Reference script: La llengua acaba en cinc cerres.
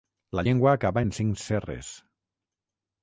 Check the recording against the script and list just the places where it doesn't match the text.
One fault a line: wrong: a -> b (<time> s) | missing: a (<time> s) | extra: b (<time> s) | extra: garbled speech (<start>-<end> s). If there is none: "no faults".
no faults